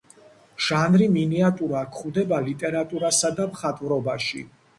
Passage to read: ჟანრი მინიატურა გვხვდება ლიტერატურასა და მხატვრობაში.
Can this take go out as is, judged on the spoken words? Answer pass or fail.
pass